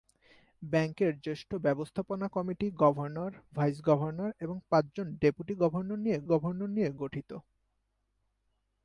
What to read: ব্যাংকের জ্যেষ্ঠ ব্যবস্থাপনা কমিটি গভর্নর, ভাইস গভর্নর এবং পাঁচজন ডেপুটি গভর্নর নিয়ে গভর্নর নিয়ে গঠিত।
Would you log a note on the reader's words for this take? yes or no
no